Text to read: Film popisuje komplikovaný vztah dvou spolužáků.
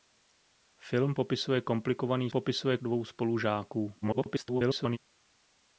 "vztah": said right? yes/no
no